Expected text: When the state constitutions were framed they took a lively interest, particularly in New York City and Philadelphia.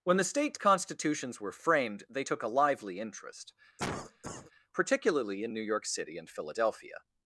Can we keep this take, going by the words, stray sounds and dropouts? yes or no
no